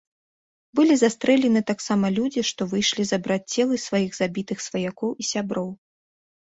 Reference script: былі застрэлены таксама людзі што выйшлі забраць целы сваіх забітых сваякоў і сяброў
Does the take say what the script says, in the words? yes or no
yes